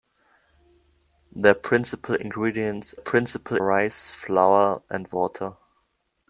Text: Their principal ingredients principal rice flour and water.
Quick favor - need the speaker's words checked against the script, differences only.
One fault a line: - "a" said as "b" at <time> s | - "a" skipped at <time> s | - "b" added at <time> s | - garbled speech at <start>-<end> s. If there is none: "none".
none